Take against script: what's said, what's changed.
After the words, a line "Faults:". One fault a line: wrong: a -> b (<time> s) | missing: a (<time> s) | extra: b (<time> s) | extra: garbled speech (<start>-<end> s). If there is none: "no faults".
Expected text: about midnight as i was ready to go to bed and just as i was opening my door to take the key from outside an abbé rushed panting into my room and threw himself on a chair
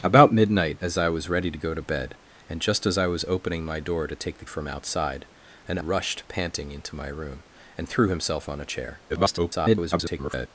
about midnight as i was ready to go to bed and just as i was opening my door to take the from outside an rushed panting into my room and threw himself on a chair [garbled]
Faults:
missing: key (4.5 s)
missing: abbé (5.8 s)
extra: garbled speech (9.1-10.5 s)